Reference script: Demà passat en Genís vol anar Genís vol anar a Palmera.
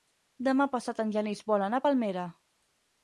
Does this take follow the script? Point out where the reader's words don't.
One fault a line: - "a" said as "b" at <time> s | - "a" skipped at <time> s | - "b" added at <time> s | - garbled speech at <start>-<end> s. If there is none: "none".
- "Genís vol anar" skipped at 1.8 s